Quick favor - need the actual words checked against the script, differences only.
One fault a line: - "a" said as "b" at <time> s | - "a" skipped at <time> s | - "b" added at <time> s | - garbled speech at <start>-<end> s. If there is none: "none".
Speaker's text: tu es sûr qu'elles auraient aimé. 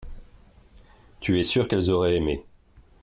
none